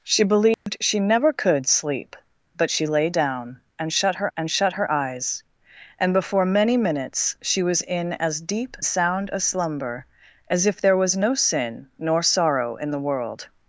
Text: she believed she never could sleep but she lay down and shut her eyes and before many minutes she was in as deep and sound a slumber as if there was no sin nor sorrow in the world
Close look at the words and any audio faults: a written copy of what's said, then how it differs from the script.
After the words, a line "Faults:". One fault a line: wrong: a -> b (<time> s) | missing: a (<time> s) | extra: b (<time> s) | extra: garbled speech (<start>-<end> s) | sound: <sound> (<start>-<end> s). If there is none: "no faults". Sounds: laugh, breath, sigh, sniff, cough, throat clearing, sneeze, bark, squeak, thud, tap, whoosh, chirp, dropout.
she believed she never could sleep but she lay down and shut her and shut her eyes and before many minutes she was in as deep sound a slumber as if there was no sin nor sorrow in the world
Faults:
sound: dropout (0.5-0.7 s)
extra: and shut her (4.3 s)
missing: and (8.8 s)